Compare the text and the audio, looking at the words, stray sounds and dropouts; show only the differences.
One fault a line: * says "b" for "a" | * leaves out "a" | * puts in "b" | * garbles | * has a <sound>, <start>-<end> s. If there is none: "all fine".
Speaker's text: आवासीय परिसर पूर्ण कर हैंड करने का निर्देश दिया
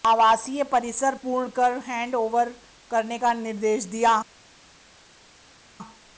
* puts in "ओवर"